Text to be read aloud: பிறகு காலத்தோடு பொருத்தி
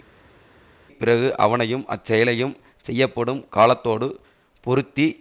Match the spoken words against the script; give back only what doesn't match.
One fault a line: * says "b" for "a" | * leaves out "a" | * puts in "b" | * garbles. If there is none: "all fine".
* puts in "அவனையும் அச்செயலையும் செய்யப்படும்"